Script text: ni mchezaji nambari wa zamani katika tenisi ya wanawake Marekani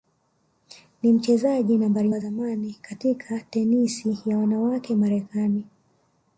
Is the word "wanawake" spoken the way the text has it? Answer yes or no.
yes